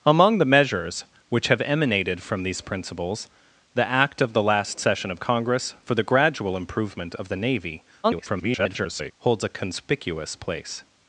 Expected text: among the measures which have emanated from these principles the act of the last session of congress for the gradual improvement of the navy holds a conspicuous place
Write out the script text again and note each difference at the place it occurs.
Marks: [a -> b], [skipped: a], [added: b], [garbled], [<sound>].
among the measures which have emanated from these principles the act of the last session of congress for the gradual improvement of the navy [garbled] holds a conspicuous place